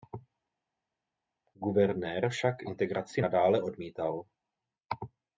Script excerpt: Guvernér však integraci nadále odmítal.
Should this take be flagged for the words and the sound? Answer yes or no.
no